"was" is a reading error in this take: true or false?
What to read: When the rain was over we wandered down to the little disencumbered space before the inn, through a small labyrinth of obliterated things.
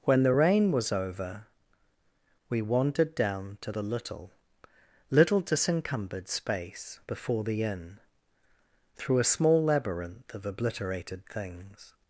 false